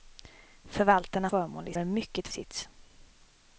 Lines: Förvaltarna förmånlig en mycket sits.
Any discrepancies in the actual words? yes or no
no